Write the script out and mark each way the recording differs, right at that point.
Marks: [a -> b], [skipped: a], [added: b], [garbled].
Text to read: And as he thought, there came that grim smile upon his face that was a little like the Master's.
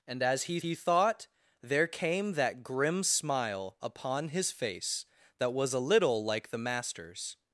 And as he [added: he] thought, there came that grim smile upon his face that was a little like the Master's.